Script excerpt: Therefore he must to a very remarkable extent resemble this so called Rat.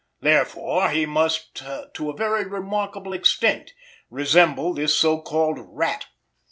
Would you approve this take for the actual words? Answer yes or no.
yes